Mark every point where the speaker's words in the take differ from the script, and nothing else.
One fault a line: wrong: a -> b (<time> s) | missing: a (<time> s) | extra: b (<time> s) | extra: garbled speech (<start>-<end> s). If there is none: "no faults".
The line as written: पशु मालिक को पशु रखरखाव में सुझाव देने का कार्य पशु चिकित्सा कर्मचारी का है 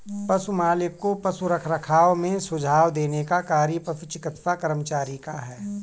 no faults